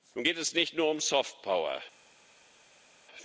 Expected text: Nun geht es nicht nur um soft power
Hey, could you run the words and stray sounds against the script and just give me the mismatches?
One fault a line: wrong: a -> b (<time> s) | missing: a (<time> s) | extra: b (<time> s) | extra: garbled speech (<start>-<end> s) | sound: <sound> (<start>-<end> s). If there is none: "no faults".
no faults